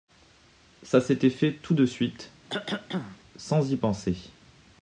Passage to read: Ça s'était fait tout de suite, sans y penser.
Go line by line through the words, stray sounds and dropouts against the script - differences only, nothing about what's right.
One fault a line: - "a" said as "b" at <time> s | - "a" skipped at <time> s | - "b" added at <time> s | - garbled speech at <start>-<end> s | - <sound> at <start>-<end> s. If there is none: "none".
- cough at 2.5-3.2 s